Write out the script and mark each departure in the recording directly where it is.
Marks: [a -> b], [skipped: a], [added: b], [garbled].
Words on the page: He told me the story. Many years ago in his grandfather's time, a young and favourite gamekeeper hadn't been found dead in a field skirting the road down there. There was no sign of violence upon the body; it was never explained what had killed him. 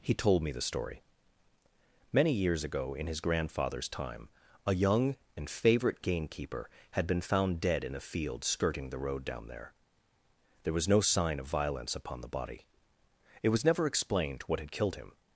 He told me the story. Many years ago in his grandfather's time, a young and favourite gamekeeper [hadn't -> had] been found dead in a field skirting the road down there. There was no sign of violence upon the body; it was never explained what had killed him.